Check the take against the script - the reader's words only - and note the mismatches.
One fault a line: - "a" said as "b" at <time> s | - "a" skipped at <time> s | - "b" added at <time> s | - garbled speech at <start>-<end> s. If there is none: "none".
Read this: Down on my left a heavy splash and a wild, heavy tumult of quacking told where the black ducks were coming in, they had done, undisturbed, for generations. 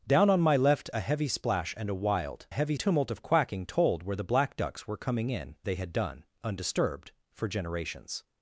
none